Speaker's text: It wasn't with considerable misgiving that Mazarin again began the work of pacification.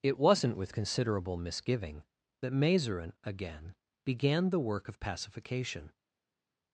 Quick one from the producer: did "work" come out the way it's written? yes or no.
yes